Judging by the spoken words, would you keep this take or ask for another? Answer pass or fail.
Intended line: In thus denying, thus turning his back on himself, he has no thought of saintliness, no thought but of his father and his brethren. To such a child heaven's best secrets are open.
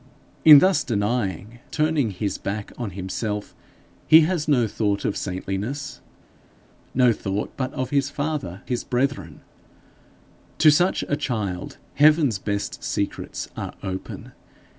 fail